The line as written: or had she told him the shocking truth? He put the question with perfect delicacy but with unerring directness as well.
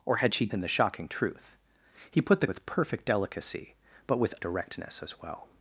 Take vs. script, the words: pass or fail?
fail